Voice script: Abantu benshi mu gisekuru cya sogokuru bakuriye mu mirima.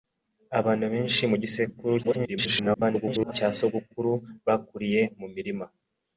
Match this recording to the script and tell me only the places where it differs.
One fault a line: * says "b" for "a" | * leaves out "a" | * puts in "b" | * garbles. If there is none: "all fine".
* garbles